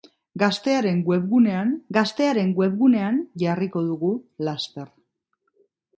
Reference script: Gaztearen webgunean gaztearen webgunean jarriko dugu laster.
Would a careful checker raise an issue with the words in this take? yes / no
no